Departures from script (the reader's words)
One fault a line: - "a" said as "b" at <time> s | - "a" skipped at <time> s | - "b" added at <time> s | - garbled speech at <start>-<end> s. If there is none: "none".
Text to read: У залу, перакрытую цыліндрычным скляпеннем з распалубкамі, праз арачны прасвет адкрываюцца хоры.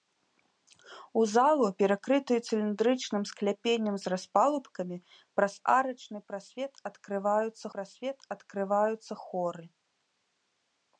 - "прасвет адкрываюцца" added at 7.8 s